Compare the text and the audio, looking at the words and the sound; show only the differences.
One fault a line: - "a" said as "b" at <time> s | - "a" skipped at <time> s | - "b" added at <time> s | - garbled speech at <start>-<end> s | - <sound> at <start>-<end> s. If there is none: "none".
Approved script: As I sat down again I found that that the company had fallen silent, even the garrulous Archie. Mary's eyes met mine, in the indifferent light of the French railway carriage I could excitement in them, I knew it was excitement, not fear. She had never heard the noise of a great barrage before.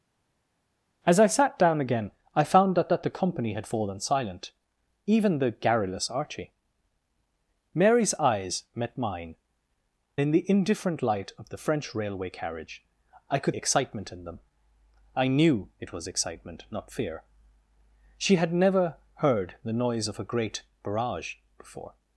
none